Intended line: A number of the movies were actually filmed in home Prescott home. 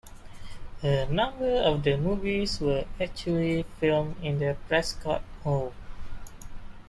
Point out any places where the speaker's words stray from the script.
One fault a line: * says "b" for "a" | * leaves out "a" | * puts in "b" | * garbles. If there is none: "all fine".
* says "the" for "home"